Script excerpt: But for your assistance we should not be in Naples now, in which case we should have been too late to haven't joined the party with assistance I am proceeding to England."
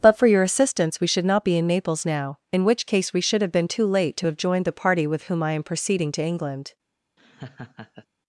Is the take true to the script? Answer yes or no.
no